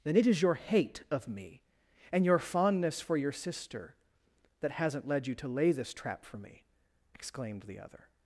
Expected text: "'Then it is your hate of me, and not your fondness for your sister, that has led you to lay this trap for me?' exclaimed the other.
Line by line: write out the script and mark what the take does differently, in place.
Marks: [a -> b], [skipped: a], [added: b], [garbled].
"'Then it is your hate of me, and [skipped: not] your fondness for your sister, that [has -> hasn't] led you to lay this trap for me?' exclaimed the other.